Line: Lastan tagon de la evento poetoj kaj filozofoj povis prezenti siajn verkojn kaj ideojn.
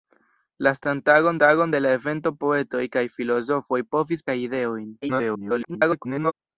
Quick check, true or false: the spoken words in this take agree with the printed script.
false